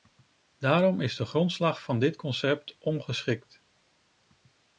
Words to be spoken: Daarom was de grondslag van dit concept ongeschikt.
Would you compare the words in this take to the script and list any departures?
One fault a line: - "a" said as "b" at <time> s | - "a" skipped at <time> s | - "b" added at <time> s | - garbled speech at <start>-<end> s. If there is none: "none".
- "was" said as "is" at 1.0 s